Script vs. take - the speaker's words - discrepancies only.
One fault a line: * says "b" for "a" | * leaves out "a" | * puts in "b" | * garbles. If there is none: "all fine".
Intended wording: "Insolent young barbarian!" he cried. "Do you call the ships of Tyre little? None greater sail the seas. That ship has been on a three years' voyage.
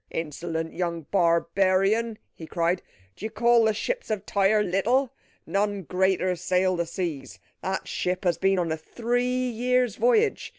all fine